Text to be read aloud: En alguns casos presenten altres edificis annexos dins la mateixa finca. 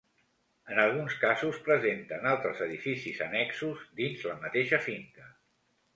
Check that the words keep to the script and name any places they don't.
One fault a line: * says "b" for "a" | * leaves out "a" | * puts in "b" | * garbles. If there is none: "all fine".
all fine